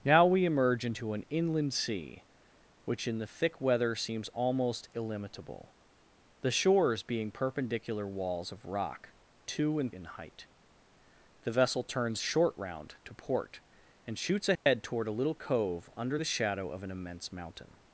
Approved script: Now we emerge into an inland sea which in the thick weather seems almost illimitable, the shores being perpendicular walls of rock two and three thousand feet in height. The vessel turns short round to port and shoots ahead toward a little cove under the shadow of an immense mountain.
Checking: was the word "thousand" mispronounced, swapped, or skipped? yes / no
yes